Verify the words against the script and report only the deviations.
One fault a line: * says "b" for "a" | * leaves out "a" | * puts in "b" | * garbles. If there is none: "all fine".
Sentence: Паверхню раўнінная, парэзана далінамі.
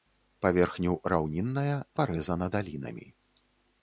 all fine